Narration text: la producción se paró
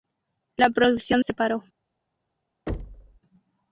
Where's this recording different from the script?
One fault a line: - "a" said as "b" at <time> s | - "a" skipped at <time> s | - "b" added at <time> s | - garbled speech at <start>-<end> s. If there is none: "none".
none